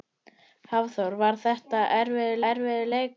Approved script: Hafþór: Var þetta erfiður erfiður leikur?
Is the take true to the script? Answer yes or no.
yes